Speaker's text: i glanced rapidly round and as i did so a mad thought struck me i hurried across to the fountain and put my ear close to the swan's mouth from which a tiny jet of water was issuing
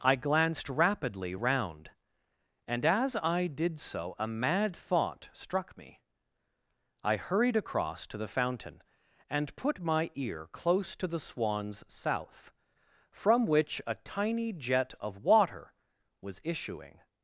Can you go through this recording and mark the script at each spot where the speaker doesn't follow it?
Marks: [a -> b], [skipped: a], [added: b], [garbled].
i glanced rapidly round and as i did so a mad thought struck me i hurried across to the fountain and put my ear close to the swan's [mouth -> south] from which a tiny jet of water was issuing